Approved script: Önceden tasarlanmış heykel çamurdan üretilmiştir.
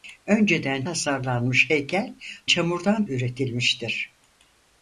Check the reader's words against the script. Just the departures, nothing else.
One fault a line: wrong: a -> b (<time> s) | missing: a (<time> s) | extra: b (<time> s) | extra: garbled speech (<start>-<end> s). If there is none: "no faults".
no faults